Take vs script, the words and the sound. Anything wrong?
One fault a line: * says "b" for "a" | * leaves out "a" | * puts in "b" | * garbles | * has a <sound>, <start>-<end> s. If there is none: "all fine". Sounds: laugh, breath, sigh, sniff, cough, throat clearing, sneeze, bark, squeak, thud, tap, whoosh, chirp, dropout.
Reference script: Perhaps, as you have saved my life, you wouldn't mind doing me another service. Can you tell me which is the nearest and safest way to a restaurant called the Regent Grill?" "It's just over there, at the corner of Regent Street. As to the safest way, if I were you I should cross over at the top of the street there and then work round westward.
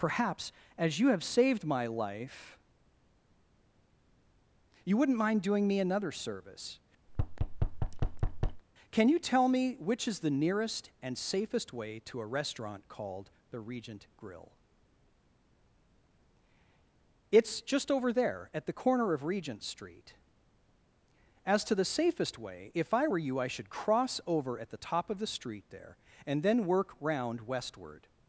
* has a thud, 7.1-8.6 s